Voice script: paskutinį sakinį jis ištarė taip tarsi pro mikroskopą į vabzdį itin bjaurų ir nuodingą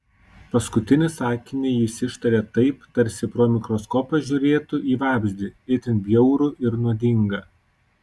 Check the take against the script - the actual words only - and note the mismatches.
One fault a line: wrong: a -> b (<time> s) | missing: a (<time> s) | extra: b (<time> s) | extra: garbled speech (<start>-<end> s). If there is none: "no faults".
extra: žiūrėtų (4.3 s)